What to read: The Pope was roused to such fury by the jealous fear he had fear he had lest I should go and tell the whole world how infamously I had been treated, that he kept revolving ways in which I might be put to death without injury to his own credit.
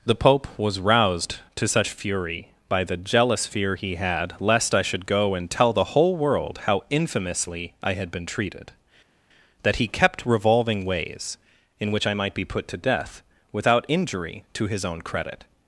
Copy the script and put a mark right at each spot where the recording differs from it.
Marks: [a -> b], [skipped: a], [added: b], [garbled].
The Pope was roused to such fury by the jealous fear he had [skipped: fear he had] lest I should go and tell the whole world how infamously I had been treated, that he kept revolving ways in which I might be put to death without injury to his own credit.